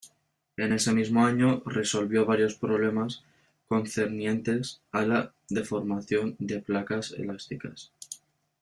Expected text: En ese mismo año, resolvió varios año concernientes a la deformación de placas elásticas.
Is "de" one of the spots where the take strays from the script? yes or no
no